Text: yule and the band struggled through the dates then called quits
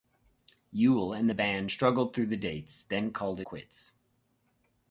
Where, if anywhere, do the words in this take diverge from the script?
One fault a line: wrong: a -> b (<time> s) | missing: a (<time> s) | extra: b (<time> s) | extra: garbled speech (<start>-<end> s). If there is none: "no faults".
no faults